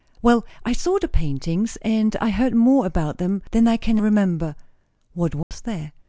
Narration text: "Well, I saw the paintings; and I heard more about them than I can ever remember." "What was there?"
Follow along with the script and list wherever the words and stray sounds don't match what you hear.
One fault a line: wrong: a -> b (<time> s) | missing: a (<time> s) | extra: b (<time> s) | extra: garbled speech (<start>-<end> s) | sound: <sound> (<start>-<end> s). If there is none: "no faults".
missing: ever (4.0 s)
sound: dropout (5.4-5.5 s)